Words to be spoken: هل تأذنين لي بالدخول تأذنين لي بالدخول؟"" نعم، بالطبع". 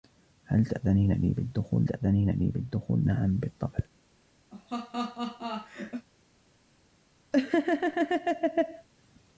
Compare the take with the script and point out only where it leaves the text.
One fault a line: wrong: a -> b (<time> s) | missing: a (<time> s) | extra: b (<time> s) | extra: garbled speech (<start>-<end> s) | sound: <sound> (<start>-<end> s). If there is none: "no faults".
sound: laugh (4.5-6.1 s)
sound: laugh (7.3-8.9 s)